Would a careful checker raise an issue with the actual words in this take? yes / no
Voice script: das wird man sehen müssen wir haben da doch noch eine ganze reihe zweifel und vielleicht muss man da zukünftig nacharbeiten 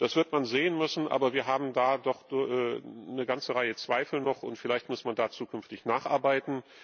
yes